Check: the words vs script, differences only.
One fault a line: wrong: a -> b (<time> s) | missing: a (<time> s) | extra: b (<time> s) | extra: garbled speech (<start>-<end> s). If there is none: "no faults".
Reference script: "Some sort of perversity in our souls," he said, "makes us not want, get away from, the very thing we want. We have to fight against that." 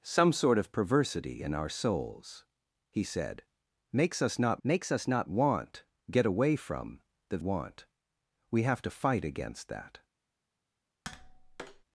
extra: makes us not (4.6 s)
missing: very thing we (7.4 s)